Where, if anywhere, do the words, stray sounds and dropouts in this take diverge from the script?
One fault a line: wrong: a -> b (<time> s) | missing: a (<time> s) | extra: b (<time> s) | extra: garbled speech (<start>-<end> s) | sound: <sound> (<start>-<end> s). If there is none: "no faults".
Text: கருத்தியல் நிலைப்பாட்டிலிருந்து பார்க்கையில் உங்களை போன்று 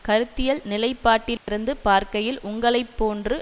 sound: dropout (1.4-1.5 s)